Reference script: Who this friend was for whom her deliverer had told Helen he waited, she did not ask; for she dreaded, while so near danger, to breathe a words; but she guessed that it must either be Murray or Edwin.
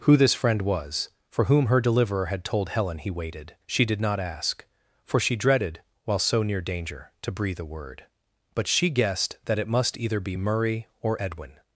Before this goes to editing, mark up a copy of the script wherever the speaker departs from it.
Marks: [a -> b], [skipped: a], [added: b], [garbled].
Who this friend was for whom her deliverer had told Helen he waited, she did not ask; for she dreaded, while so near danger, to breathe a [words; -> word] but she guessed that it must either be Murray or Edwin.